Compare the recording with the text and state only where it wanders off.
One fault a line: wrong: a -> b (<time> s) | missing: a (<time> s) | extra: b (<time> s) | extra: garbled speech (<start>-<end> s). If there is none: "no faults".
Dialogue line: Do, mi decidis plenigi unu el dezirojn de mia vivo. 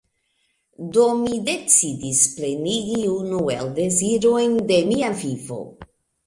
no faults